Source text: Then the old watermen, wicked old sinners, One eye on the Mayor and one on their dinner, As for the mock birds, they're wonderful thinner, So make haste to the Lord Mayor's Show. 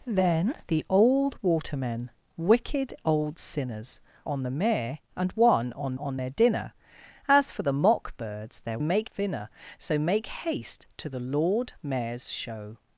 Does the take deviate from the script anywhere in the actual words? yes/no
yes